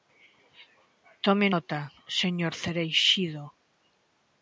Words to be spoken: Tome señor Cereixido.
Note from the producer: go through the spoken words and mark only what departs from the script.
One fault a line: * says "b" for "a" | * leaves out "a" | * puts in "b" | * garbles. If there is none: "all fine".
* puts in "nota"